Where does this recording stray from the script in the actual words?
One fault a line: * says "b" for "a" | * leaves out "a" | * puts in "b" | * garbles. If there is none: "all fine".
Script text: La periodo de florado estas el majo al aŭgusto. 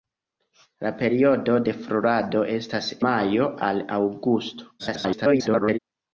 * leaves out "el"
* garbles